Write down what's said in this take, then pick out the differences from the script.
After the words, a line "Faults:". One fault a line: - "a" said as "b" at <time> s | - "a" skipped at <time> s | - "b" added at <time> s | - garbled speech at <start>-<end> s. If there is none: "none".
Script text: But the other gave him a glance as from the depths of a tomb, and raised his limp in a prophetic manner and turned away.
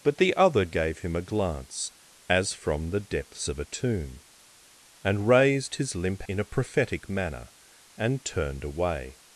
But the other gave him a glance as from the depths of a tomb, and raised his limp in a prophetic manner and turned away.
Faults:
none